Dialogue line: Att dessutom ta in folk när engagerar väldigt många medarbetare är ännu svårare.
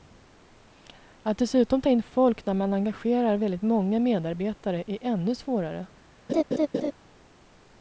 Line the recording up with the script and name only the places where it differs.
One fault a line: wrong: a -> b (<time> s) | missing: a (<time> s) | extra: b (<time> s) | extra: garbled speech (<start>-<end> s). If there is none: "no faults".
extra: man (2.5 s)